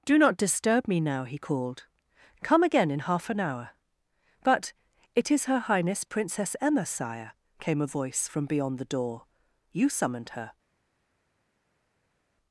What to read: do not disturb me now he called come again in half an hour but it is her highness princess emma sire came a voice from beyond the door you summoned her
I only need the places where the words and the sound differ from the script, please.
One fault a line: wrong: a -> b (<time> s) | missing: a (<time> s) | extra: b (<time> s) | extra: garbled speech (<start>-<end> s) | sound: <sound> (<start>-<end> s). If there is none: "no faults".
no faults